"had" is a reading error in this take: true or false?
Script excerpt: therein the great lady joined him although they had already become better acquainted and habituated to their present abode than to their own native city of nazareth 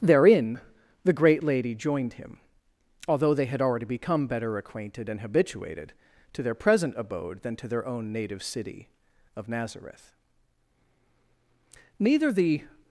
false